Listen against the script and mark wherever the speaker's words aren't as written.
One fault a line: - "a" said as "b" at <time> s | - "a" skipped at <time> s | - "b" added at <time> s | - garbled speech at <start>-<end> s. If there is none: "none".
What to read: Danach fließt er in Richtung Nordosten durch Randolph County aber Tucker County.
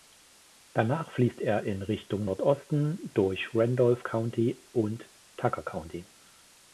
- "aber" said as "und" at 4.7 s